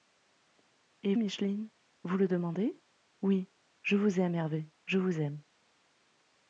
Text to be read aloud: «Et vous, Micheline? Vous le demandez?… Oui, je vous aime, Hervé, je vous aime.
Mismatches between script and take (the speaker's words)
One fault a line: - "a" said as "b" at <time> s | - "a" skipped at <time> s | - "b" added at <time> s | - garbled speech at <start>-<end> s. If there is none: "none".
- "vous" skipped at 1.1 s